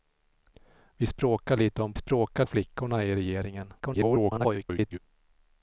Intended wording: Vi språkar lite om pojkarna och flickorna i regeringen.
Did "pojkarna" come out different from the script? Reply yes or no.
yes